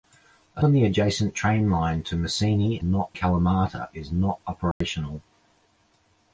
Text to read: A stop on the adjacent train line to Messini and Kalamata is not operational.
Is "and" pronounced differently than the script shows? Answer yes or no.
yes